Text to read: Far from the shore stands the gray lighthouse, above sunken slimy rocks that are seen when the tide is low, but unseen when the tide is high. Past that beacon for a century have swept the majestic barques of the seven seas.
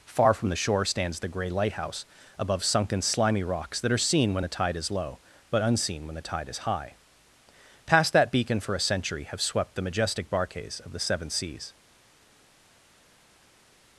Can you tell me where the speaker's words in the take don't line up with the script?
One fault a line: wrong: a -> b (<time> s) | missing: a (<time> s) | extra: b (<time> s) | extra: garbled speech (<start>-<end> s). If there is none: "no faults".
no faults